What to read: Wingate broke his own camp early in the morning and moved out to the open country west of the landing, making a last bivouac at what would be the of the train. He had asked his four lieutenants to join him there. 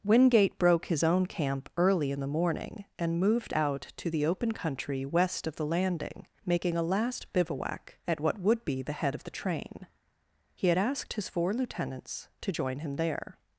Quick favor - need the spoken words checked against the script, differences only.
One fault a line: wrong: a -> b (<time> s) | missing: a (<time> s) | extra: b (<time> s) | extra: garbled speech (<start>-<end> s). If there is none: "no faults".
extra: head (8.9 s)